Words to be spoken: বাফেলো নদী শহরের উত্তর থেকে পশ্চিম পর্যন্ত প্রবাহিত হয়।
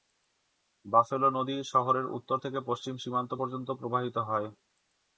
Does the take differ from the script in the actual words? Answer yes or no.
yes